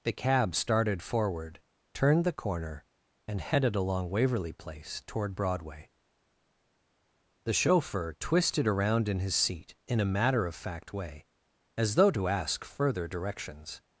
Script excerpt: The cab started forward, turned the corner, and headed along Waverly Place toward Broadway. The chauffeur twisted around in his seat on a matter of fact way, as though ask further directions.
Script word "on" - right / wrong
wrong